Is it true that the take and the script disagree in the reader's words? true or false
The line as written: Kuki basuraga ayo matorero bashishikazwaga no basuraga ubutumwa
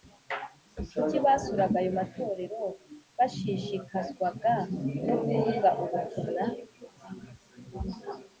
true